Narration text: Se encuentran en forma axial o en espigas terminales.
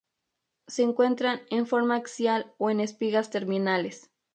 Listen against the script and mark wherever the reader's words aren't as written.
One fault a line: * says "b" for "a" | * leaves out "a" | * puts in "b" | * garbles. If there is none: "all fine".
all fine